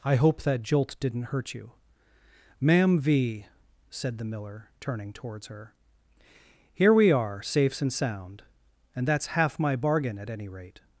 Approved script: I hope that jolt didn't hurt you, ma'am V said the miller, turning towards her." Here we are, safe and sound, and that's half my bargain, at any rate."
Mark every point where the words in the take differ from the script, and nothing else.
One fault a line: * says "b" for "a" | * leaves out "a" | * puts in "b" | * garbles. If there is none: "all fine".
* says "safes" for "safe"